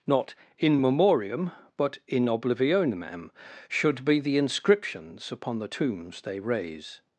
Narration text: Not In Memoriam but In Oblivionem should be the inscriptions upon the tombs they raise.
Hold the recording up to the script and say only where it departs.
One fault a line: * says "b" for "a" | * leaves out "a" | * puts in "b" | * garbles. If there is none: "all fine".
all fine